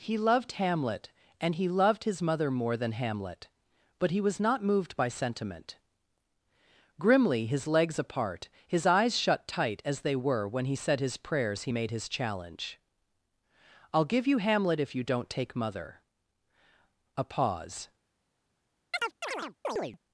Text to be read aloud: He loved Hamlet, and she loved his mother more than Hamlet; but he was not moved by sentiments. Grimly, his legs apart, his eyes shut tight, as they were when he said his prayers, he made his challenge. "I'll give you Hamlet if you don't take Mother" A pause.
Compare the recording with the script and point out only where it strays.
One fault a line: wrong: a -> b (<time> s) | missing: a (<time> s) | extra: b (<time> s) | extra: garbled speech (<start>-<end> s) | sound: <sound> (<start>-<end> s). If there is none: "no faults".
wrong: she -> he (1.5 s)
wrong: sentiments -> sentiment (5.1 s)
sound: chirp (18.9-20.0 s)